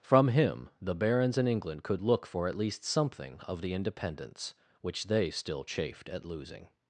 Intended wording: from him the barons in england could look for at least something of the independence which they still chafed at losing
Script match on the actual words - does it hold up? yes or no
yes